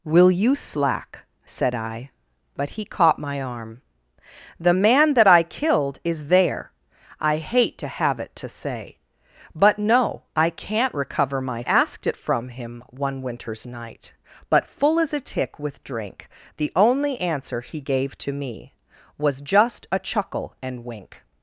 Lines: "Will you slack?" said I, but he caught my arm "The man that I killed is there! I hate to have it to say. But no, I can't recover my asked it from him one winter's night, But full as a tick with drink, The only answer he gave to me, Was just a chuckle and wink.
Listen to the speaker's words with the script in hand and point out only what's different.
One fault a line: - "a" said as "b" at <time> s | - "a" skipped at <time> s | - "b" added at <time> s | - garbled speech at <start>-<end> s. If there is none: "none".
none